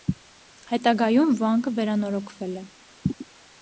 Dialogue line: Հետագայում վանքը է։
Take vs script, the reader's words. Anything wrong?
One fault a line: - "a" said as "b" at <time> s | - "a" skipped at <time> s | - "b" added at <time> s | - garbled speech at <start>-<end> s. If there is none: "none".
- "վերանորոգվել" added at 1.8 s